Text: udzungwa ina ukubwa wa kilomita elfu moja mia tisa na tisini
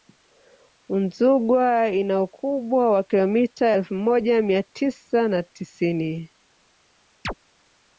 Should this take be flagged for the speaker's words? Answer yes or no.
no